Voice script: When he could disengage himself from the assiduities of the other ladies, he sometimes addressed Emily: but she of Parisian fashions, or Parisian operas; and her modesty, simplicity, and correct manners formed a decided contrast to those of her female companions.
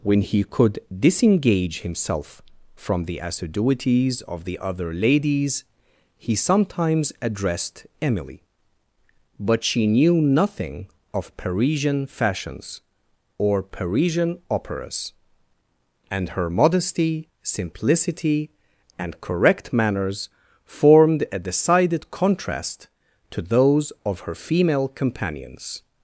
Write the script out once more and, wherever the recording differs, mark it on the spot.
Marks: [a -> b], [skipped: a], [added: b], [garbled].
When he could disengage himself from the assiduities of the other ladies, he sometimes addressed Emily: but she [added: knew nothing] of Parisian fashions, or Parisian operas; and her modesty, simplicity, and correct manners formed a decided contrast to those of her female companions.